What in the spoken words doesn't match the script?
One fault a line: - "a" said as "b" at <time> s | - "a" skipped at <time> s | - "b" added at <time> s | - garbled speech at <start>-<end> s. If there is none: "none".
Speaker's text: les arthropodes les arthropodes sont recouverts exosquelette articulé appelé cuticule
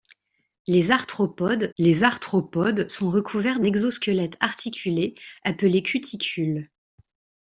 none